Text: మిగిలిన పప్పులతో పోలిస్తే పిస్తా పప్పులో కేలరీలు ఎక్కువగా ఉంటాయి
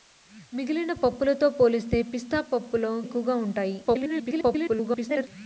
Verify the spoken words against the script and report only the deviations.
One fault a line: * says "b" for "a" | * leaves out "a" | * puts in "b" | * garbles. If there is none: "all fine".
* leaves out "కేలరీలు"
* garbles